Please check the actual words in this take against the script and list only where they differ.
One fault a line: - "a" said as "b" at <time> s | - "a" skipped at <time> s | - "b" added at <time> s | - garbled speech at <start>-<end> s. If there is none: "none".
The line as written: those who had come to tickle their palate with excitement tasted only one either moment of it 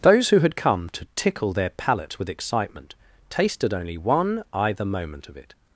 none